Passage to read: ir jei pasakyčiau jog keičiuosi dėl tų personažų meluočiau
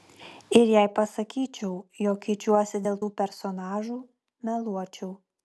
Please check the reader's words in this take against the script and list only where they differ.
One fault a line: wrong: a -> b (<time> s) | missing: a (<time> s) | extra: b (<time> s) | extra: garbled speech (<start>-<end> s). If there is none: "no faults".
no faults